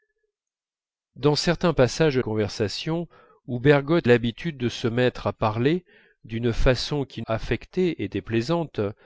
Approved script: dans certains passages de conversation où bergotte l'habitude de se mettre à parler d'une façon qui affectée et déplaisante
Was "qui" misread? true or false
false